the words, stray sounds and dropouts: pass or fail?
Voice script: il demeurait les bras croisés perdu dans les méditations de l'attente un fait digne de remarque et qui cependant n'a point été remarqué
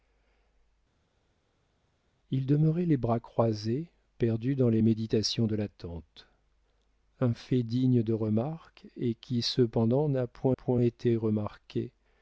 fail